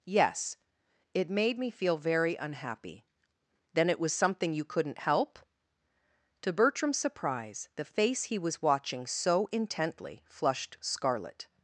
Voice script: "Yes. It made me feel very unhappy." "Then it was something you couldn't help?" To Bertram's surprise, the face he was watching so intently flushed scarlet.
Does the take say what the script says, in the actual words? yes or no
yes